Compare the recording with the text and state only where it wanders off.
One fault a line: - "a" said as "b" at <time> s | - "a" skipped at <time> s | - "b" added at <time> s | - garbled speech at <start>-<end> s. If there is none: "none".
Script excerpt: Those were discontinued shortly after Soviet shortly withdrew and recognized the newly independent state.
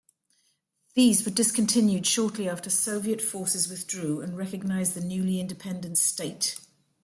- "Those" said as "These" at 0.9 s
- "shortly" said as "forces" at 3.2 s